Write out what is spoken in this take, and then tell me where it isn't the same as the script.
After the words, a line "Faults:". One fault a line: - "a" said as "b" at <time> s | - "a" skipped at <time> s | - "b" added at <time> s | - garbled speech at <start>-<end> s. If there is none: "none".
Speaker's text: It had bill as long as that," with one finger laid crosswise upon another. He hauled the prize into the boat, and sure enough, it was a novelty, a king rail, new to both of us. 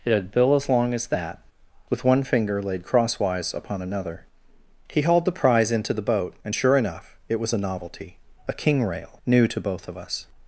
It had bill as long as that," with one finger laid crosswise upon another. He hauled the prize into the boat, and sure enough, it was a novelty, a king rail, new to both of us.
Faults:
none